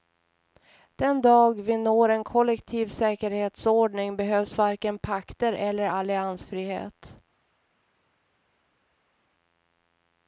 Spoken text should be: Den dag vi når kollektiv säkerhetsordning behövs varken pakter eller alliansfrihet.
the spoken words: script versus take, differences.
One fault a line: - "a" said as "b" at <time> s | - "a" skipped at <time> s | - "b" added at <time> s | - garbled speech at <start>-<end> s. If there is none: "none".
- "en" added at 2.1 s